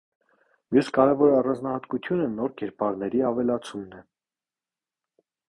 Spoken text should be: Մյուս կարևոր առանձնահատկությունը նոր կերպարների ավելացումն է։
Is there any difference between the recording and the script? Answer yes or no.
no